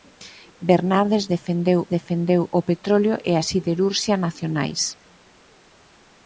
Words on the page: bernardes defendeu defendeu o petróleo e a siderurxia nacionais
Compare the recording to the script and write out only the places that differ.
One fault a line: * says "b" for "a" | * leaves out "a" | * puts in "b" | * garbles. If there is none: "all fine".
all fine